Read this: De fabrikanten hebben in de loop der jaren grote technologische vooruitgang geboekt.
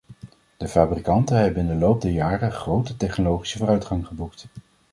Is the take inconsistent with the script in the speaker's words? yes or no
no